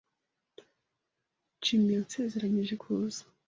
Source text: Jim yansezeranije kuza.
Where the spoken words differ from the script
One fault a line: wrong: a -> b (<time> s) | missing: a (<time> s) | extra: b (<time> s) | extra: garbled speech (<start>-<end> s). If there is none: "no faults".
no faults